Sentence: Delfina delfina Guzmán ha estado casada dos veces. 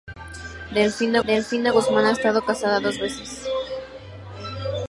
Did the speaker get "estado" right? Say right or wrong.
right